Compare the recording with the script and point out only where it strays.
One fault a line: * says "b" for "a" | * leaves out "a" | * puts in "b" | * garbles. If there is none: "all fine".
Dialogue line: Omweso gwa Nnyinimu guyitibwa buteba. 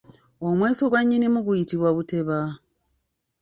all fine